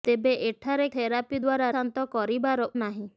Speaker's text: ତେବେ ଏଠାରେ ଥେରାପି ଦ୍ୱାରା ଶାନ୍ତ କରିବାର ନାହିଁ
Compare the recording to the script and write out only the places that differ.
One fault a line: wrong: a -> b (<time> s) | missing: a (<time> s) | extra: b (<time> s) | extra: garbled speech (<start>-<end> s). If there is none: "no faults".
no faults